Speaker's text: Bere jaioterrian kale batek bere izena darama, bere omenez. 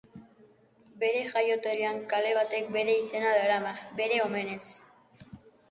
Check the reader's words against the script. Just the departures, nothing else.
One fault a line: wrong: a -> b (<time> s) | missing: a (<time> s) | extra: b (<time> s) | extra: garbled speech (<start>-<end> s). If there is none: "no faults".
no faults